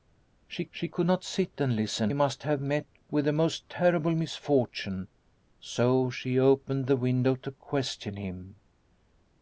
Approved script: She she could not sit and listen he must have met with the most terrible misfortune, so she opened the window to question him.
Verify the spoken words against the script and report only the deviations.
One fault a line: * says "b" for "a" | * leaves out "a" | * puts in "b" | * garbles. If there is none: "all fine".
all fine